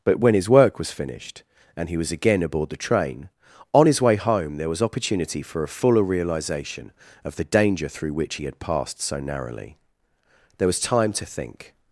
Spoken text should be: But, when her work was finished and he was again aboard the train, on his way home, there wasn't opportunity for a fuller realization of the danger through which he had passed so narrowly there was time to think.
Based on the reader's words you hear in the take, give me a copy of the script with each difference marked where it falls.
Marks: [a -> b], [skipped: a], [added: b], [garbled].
But, when [her -> his] work was finished and he was again aboard the train, on his way home, there [wasn't -> was] opportunity for a fuller realization of the danger through which he had passed so narrowly there was time to think.